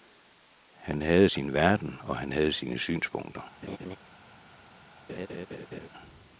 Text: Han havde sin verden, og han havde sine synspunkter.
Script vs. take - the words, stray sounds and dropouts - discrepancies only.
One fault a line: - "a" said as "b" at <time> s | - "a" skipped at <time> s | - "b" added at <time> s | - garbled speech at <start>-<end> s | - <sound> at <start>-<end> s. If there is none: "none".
- laugh at 3.6-4.0 s
- laugh at 5.1-5.9 s